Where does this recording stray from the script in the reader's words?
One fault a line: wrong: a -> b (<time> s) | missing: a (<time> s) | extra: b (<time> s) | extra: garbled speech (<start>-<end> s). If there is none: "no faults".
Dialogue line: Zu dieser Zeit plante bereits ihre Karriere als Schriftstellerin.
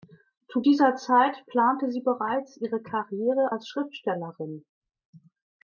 extra: sie (1.9 s)